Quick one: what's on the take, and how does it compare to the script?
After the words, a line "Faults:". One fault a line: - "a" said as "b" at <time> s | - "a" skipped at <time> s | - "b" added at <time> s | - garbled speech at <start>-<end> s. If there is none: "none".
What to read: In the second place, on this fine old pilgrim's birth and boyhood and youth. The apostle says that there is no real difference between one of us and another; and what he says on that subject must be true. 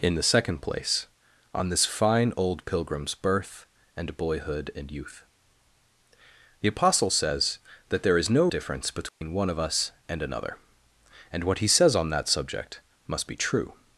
In the second place, on this fine old pilgrim's birth and boyhood and youth. The apostle says that there is no difference between one of us and another; and what he says on that subject must be true.
Faults:
- "real" skipped at 8.5 s